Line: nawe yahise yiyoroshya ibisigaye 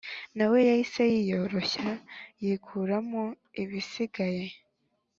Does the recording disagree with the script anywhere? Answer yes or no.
yes